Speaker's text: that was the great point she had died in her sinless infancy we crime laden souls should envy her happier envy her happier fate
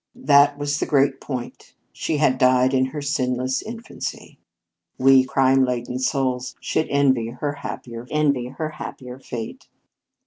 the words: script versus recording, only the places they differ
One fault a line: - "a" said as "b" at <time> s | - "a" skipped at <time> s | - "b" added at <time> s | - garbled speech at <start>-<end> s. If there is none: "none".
none